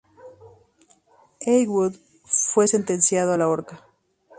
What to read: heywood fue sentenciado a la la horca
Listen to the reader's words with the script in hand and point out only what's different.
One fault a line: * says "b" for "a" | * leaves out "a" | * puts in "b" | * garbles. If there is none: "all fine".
* leaves out "la"